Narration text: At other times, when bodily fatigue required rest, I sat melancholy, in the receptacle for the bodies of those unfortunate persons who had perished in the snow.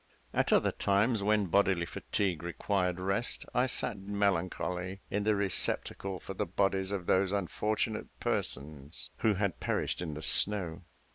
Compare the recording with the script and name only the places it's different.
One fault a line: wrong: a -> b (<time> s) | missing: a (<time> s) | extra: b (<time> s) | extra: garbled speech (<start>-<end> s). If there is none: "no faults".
no faults